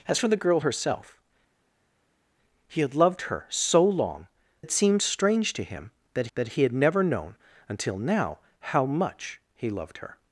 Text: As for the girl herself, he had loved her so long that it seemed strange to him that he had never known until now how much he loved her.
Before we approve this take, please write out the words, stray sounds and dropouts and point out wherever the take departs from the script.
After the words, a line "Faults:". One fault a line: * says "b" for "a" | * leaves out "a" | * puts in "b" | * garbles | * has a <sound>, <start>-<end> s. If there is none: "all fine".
As for the girl herself, he had loved her so long it seemed strange to him that that he had never known until now how much he loved her.
Faults:
* leaves out "that"
* puts in "that"